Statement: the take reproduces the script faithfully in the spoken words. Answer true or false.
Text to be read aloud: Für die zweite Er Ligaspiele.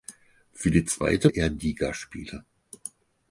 true